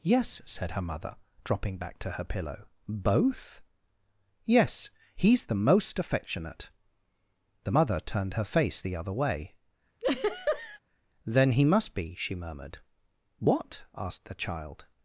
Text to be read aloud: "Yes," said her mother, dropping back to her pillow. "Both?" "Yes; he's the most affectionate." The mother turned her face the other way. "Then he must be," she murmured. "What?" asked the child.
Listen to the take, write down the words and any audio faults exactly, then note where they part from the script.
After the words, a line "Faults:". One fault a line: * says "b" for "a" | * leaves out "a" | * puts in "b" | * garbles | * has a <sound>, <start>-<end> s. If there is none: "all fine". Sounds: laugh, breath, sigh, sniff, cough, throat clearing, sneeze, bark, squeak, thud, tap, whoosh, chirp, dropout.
"Yes," said her mother, dropping back to her pillow. "Both?" "Yes; he's the most affectionate." The mother turned her face the other way. "Then he must be," she murmured. "What?" asked the child.
Faults:
* has a laugh, 10.0-10.8 s